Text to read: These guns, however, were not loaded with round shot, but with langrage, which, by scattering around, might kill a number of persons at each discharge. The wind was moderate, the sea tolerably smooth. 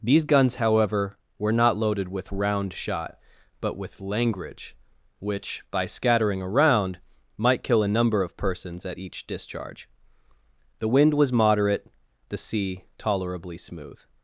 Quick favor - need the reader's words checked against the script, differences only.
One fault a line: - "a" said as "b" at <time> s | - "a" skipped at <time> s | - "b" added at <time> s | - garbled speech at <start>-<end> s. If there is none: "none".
none